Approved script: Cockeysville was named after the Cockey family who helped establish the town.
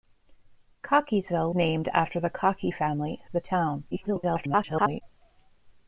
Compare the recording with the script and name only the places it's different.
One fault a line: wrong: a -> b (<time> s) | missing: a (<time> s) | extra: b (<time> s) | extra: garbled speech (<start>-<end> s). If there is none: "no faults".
missing: was (1.5 s)
missing: who helped establish (3.2 s)
extra: garbled speech (3.9-5.0 s)